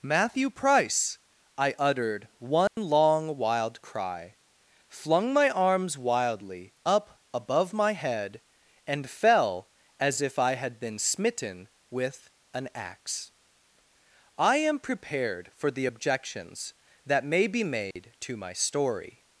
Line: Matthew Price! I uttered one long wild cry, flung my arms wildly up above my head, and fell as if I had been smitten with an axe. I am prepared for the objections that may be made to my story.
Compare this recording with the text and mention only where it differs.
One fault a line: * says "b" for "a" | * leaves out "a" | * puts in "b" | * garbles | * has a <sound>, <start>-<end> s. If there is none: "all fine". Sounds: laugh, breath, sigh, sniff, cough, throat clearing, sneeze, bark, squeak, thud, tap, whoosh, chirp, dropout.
* has a dropout, 2.7-2.8 s
* has a dropout, 17.9-18.0 s